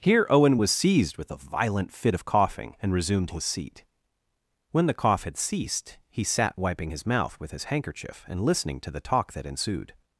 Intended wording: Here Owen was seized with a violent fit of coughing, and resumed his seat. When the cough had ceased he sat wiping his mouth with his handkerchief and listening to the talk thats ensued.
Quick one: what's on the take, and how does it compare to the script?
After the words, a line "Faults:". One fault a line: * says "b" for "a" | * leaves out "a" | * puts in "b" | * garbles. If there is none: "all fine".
Here Owen was seized with a violent fit of coughing, and resumed his seat. When the cough had ceased he sat wiping his mouth with his handkerchief and listening to the talk that ensued.
Faults:
* says "that" for "thats"